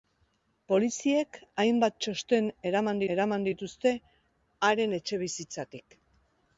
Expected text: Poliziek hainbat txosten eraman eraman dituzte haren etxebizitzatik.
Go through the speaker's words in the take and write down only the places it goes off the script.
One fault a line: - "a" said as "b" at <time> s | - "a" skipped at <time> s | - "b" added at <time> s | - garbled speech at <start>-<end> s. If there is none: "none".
none